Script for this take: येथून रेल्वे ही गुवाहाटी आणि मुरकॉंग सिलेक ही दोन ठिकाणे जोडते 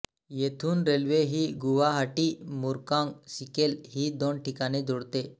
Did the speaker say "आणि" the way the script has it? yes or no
no